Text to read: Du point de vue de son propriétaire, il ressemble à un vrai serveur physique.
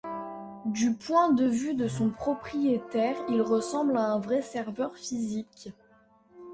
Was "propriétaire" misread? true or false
false